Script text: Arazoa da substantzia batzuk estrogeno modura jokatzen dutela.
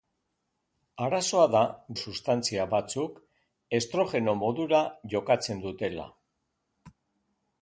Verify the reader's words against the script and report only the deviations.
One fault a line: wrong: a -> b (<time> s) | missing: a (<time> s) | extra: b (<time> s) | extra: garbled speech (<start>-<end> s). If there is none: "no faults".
no faults